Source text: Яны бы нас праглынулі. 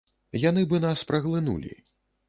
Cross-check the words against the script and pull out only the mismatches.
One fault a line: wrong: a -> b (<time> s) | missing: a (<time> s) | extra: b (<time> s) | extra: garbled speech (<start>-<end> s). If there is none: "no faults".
no faults